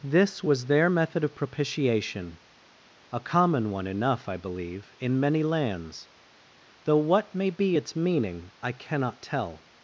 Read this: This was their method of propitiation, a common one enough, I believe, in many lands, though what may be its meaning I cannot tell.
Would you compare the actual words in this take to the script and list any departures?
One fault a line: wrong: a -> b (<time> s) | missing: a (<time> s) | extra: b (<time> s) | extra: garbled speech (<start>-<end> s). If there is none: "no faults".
no faults